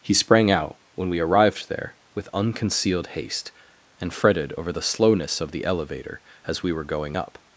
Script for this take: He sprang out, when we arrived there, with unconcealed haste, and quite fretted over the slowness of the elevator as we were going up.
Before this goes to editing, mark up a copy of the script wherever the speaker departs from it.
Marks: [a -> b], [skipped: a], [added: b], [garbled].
He sprang out, when we arrived there, with unconcealed haste, and [skipped: quite] fretted over the slowness of the elevator as we were going up.